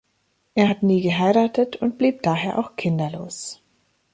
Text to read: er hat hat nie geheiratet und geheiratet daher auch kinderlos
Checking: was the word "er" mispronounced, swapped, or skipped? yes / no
no